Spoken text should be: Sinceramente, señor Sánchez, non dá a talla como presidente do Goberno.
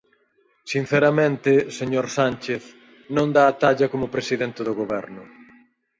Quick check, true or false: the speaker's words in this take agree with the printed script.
true